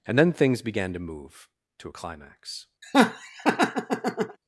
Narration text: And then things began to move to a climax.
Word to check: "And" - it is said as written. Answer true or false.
true